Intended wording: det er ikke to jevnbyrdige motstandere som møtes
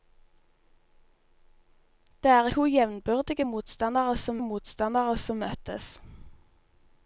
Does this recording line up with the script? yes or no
no